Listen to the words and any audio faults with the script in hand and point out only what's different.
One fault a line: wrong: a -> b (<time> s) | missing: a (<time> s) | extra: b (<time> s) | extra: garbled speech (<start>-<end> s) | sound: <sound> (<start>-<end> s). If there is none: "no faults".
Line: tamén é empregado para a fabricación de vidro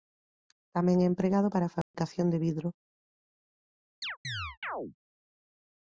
sound: dropout (1.8-1.9 s)
sound: chirp (4.0-5.0 s)